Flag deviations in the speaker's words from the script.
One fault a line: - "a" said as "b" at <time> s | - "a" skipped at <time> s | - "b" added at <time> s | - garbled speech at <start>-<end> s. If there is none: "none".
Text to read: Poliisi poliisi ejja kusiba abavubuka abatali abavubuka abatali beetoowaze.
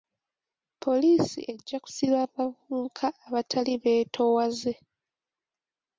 - "poliisi" skipped at 1.4 s
- "abavubuka abatali" skipped at 3.7 s